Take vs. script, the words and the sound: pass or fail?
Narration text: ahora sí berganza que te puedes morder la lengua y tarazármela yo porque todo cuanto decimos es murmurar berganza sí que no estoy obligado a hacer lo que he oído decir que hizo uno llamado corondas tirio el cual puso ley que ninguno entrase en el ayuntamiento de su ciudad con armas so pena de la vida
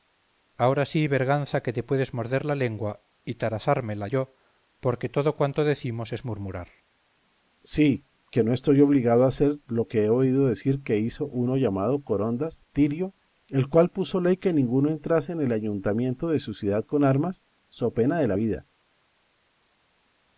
pass